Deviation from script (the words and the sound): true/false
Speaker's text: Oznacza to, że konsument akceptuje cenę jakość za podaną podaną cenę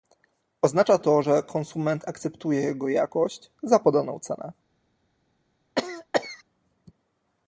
true